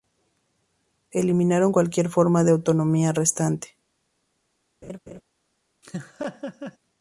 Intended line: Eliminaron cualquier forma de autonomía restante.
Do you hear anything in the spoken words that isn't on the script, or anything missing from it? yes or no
no